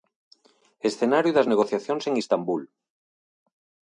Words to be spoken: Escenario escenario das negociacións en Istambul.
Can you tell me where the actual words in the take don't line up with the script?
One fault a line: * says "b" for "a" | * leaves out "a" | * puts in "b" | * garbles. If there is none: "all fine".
* leaves out "escenario"